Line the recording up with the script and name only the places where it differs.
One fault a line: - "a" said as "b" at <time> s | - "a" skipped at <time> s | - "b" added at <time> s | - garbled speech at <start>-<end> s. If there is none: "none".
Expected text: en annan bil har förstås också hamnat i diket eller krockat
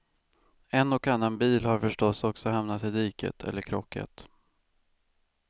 - "och" added at 0.9 s